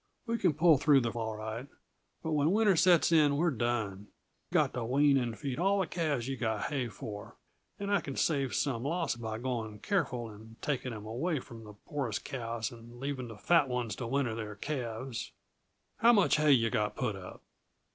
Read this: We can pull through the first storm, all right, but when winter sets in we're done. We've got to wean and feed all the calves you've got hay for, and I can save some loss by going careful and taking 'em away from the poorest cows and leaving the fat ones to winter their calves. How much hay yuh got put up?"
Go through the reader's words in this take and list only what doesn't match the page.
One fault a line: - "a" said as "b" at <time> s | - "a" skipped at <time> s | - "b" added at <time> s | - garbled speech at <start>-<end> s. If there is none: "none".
- "first storm" skipped at 1.1 s
- "We've" skipped at 4.1 s